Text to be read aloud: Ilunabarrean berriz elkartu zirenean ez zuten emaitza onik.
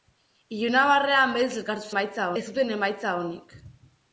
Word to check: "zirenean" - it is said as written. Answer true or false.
false